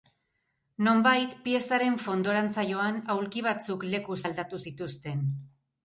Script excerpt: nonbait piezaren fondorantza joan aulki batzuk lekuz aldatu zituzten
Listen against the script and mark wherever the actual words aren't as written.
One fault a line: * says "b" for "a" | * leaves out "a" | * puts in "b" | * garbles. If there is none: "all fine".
all fine